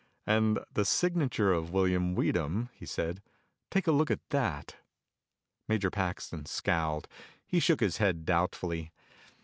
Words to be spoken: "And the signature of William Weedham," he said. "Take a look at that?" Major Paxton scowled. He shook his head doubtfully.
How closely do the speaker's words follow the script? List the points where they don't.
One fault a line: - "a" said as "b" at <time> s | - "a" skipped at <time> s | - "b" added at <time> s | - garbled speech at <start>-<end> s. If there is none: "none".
none